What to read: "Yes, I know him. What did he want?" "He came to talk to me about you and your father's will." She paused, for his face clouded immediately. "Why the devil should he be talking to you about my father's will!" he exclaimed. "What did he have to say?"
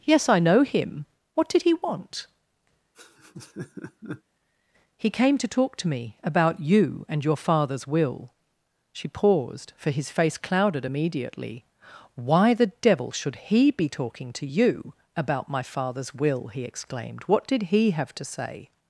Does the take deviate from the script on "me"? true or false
false